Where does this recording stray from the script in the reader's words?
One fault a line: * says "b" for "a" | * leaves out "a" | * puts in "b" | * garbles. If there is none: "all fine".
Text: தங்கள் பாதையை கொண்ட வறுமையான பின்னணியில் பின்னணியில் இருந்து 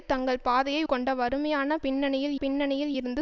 all fine